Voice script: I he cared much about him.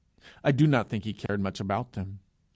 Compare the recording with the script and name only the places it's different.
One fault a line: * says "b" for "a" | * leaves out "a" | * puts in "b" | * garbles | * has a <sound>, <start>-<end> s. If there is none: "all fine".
* puts in "do not think"
* has a dropout, 1.3-1.3 s
* says "them" for "him"